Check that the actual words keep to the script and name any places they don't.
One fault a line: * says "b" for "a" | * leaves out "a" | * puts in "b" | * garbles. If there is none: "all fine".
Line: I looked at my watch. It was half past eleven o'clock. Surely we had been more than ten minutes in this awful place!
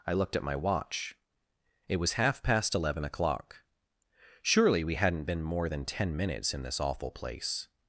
* says "hadn't" for "had"